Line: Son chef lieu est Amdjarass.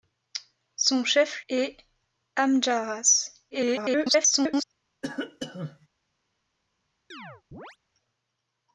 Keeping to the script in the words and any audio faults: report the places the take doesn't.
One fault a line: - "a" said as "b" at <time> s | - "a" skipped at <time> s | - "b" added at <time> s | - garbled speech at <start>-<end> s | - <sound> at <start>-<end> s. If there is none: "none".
- "lieu" skipped at 1.4 s
- garbled speech at 3.5-4.6 s
- cough at 5.0-5.9 s
- chirp at 7.1-7.8 s